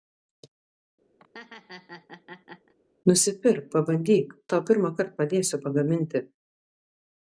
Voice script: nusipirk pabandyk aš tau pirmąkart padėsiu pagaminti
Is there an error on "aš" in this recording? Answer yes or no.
yes